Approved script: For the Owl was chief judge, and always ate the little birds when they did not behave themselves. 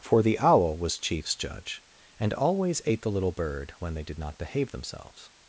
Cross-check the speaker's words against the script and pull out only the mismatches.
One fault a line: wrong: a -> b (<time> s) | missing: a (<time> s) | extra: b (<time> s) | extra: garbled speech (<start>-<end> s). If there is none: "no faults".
wrong: chief -> chiefs (1.0 s)
wrong: birds -> bird (3.3 s)